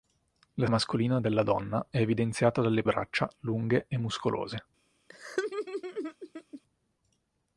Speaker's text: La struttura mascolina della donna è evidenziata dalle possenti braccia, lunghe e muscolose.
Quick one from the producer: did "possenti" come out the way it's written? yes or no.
no